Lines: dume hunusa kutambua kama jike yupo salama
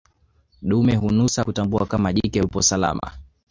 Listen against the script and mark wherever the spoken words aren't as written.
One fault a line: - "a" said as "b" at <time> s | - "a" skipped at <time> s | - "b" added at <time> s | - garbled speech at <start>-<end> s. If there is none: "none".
none